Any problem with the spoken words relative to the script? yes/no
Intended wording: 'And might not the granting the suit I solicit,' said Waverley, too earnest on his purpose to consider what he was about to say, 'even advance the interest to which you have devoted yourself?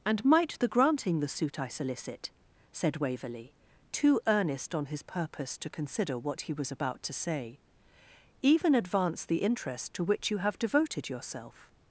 yes